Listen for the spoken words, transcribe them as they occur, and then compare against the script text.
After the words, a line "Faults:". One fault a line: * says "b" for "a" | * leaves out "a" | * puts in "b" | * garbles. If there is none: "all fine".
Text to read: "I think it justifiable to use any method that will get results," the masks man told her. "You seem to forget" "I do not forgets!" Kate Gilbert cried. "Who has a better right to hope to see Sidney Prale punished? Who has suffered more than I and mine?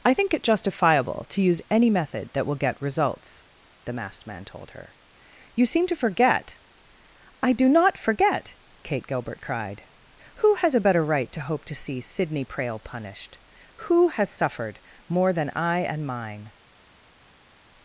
"I think it justifiable to use any method that will get results," the masked man told her. "You seem to forget" "I do not forget!" Kate Gilbert cried. "Who has a better right to hope to see Sidney Prale punished? Who has suffered more than I and mine?
Faults:
* says "masked" for "masks"
* says "forget" for "forgets"